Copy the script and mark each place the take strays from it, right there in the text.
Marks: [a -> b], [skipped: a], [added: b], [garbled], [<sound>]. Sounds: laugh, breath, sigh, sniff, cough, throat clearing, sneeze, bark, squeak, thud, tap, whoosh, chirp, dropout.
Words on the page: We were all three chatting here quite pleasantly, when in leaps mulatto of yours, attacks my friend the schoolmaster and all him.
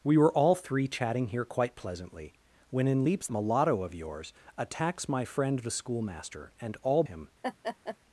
We were all three chatting here quite pleasantly, when in leaps mulatto of yours, attacks my friend the schoolmaster and all him. [laugh]